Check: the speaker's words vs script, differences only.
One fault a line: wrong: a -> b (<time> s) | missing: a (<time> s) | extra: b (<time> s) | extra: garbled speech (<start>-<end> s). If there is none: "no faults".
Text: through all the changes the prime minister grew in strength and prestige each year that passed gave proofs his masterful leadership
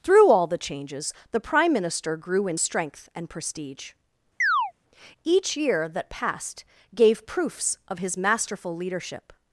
extra: of (7.9 s)